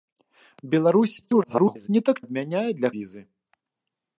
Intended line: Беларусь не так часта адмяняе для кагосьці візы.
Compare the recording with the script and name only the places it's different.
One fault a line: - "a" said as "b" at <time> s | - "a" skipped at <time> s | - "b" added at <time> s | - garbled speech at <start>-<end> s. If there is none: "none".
- garbled speech at 1.2-1.9 s
- "часта" skipped at 2.2 s
- "кагосьці" skipped at 2.9 s